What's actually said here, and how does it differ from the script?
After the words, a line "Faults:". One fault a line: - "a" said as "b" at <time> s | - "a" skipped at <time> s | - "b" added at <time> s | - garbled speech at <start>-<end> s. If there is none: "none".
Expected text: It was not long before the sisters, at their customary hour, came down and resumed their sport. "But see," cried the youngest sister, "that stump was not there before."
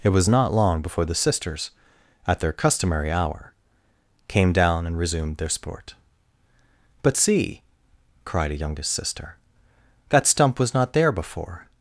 It was not long before the sisters, at their customary hour, came down and resumed their sport. "But see," cried a youngest sister, "that stump was not there before."
Faults:
- "the" said as "a" at 8.5 s